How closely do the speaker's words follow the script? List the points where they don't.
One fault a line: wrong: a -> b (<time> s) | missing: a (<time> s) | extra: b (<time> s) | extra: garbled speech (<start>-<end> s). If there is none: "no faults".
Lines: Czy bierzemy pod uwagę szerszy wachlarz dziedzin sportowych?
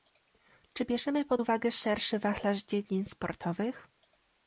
no faults